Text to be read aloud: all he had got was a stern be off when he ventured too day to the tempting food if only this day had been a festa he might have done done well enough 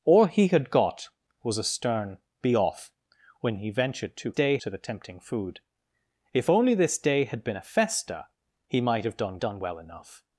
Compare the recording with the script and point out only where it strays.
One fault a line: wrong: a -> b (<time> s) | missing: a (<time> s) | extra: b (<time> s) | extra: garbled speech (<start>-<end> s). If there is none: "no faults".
no faults